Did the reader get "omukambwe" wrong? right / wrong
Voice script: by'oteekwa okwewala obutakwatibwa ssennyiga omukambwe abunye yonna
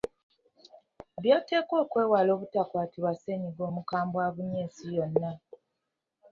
right